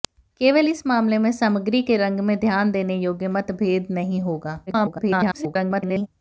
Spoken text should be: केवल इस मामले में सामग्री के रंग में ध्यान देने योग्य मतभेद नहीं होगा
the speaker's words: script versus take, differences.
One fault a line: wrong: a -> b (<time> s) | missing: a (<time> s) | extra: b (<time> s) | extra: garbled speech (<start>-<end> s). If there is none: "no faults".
extra: garbled speech (4.7-6.1 s)